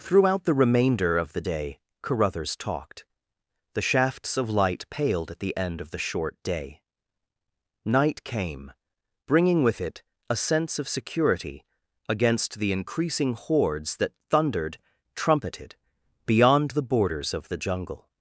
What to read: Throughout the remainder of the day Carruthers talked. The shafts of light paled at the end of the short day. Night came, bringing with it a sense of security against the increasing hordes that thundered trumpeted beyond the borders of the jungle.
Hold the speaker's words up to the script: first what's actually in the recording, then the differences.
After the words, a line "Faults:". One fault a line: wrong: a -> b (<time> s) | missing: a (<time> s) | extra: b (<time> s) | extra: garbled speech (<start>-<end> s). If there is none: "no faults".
Throughout the remainder of the day Carruthers talked. The shafts of light paled at the end of the short day. Night came, bringing with it a sense of security against the increasing hordes that thundered trumpeted beyond the borders of the jungle.
Faults:
no faults